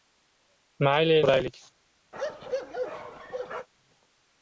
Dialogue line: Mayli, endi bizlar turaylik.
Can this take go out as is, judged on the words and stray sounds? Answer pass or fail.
fail